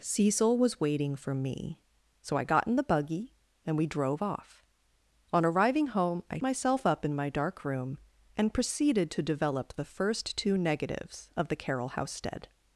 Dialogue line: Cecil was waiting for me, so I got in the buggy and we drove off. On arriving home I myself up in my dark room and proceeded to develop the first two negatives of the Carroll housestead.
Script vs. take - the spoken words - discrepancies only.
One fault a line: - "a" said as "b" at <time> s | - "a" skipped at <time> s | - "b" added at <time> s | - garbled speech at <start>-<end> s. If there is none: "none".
none